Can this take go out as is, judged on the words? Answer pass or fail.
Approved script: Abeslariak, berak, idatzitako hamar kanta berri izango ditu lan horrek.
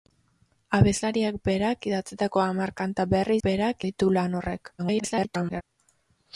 fail